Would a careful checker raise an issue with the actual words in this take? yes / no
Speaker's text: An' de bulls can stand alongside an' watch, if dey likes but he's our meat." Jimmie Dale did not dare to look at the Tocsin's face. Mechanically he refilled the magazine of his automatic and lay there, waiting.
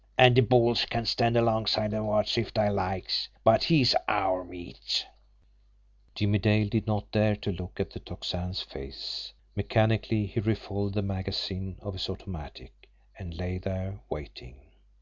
no